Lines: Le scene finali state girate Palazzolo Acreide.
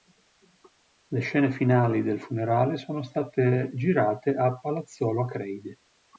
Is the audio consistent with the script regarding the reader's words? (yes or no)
no